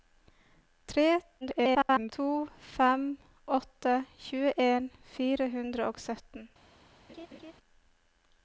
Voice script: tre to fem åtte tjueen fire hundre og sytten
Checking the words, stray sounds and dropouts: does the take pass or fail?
fail